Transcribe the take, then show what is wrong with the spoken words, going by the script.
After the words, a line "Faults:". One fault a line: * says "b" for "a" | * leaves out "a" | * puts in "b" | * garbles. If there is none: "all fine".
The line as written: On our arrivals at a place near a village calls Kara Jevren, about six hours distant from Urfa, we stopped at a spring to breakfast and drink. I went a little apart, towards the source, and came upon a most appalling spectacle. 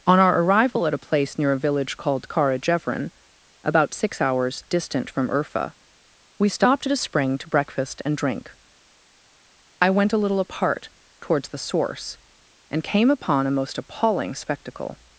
On our arrival at a place near a village called Kara Jevren, about six hours distant from Urfa, we stopped at a spring to breakfast and drink. I went a little apart, towards the source, and came upon a most appalling spectacle.
Faults:
* says "arrival" for "arrivals"
* says "called" for "calls"